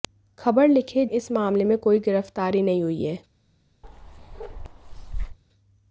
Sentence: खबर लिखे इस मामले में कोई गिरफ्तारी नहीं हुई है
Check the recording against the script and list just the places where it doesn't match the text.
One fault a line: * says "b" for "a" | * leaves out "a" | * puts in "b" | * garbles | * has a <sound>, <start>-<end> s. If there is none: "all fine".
* has a bark, 3.8-5.4 s